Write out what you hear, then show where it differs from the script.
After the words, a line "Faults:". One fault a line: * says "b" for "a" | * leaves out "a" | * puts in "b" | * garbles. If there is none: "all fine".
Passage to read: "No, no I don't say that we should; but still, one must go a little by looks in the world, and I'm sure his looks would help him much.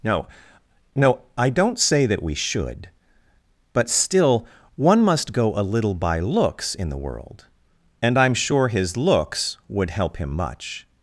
"No, no I don't say that we should; but still, one must go a little by looks in the world, and I'm sure his looks would help him much.
Faults:
all fine